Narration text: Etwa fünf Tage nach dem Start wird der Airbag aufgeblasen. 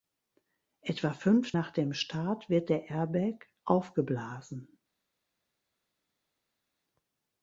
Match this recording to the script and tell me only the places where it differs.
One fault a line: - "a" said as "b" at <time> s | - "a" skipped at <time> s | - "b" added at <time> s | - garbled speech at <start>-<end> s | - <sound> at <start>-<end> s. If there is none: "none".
- "Tage" skipped at 1.5 s